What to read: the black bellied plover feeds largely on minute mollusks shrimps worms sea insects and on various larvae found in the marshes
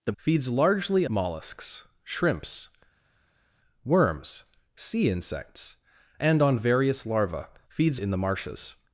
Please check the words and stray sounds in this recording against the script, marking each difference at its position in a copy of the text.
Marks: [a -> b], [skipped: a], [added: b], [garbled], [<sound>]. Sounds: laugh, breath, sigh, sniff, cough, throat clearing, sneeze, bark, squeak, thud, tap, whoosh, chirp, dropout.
the [skipped: black bellied plover] feeds largely [skipped: on minute] mollusks shrimps worms sea insects and on various larvae [found -> feeds] in the marshes